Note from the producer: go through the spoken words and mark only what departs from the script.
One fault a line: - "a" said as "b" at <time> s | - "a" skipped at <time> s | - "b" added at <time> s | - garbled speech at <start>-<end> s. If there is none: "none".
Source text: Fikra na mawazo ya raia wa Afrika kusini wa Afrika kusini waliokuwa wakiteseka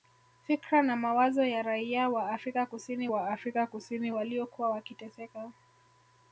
none